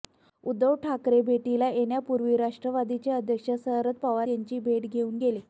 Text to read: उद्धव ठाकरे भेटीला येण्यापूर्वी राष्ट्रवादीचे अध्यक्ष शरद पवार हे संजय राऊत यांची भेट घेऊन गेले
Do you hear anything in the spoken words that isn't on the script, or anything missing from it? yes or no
yes